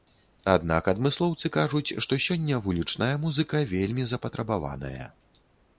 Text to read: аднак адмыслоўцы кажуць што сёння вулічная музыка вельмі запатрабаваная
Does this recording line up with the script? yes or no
yes